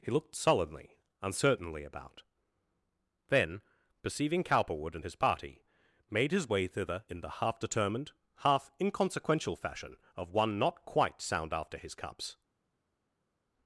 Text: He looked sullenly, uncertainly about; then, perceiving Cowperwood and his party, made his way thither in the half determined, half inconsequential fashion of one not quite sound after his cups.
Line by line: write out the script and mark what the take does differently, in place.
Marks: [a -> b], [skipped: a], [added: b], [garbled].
He looked sullenly, uncertainly about; then, perceiving Cowperwood and his party, made his way thither in the half determined, half inconsequential fashion of one not quite sound after his cups.